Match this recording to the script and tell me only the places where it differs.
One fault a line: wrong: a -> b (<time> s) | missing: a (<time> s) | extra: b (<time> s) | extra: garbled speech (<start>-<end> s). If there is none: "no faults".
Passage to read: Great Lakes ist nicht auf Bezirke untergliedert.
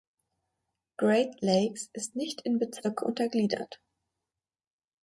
wrong: auf -> in (2.4 s)